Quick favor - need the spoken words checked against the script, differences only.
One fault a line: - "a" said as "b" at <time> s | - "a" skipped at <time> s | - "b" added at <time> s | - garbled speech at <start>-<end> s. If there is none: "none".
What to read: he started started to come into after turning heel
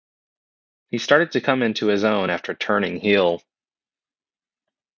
- "started" skipped at 1.3 s
- "his own" added at 1.9 s